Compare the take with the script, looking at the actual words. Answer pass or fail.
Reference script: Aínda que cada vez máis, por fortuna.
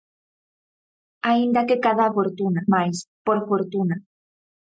fail